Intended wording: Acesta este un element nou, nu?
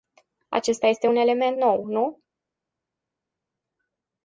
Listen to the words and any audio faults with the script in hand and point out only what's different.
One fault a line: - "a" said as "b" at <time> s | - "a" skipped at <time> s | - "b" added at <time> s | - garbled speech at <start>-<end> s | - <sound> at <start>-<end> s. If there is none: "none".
none